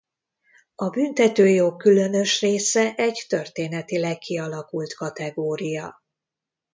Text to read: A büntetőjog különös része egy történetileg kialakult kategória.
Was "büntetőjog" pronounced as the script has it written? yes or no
yes